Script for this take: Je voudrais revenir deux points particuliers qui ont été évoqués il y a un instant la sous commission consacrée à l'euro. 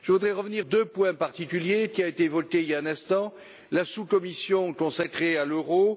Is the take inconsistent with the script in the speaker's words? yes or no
no